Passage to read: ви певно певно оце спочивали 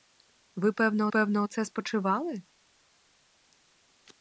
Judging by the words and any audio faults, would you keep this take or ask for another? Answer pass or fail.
pass